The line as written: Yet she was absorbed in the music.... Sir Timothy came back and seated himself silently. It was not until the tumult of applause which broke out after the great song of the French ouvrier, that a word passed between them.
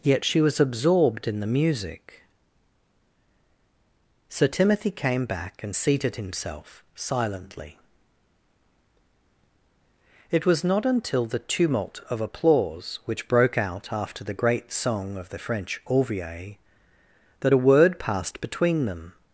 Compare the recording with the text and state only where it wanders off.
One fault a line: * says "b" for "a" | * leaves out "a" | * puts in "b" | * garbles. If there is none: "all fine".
all fine